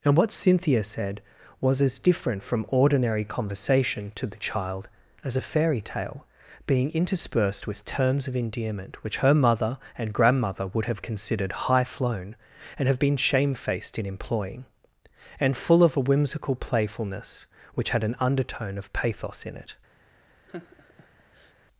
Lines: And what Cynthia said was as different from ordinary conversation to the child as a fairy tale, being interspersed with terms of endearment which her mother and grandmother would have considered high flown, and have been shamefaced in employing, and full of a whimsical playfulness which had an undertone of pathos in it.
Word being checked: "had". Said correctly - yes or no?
yes